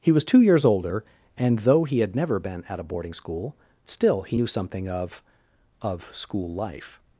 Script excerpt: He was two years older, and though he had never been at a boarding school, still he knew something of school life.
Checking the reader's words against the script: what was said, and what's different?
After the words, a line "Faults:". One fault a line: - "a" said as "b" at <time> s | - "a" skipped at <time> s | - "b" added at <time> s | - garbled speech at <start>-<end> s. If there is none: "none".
He was two years older, and though he had never been at a boarding school, still he knew something of of school life.
Faults:
- "of" added at 5.8 s